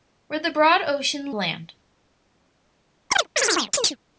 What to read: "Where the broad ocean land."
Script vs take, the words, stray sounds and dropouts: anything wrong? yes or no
yes